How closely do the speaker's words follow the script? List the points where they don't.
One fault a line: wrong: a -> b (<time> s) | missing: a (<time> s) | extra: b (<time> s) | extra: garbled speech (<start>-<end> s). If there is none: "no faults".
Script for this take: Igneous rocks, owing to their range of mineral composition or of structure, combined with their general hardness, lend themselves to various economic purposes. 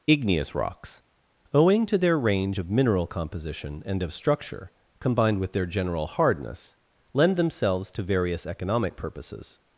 wrong: or -> and (3.8 s)